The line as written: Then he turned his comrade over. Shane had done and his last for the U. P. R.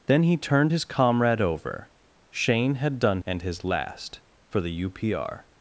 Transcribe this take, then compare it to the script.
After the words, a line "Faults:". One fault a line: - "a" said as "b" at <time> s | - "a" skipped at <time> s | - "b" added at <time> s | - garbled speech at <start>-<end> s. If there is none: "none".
Then he turned his comrade over. Shane had done and his last for the U. P. R.
Faults:
none